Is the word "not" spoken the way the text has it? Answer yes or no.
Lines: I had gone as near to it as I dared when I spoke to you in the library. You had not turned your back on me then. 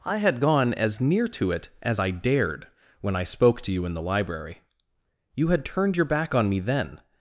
no